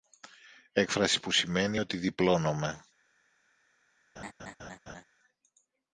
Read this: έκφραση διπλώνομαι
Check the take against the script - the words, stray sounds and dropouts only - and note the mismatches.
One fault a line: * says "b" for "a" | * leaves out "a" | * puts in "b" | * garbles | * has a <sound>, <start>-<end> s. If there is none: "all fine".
* puts in "που σημαίνει ότι"
* has a laugh, 4.2-5.0 s